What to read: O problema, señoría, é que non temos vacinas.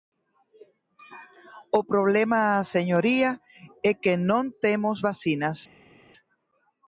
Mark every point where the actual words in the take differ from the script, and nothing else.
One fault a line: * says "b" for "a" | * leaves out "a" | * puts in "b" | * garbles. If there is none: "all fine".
all fine